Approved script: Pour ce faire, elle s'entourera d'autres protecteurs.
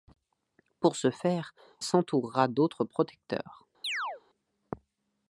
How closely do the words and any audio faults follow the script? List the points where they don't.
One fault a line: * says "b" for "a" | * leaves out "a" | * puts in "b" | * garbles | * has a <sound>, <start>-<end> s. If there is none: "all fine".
* leaves out "elle"
* has a chirp, 3.8-4.2 s